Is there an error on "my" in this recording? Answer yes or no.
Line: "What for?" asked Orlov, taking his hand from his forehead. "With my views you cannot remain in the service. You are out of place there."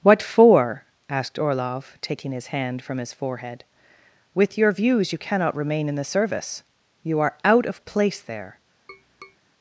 yes